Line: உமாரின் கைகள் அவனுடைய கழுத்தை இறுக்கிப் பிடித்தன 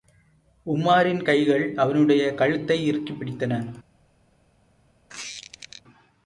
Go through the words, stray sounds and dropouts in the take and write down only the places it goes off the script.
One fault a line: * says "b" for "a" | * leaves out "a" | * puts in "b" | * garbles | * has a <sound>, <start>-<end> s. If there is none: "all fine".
* has a squeak, 5.1-5.8 s